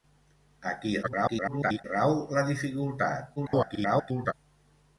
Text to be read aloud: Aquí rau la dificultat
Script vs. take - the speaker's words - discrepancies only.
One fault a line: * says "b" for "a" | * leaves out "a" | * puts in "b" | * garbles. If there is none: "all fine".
* garbles
* garbles